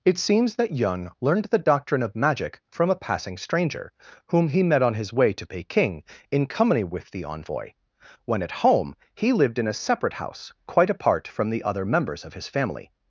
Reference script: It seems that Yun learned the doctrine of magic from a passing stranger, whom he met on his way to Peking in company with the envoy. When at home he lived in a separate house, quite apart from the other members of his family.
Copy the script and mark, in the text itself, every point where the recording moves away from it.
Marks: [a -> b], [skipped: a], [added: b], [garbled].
It seems that Yun learned the doctrine of magic from a passing stranger, whom he met on his way to Peking in company with the envoy. When at home he lived in a separate house, quite apart from the other members of his family.